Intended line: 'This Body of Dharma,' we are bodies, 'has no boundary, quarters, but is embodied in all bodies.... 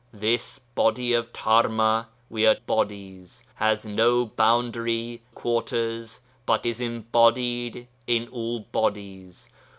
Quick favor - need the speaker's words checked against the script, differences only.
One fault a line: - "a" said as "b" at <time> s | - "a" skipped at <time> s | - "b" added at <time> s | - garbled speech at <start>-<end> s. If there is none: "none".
none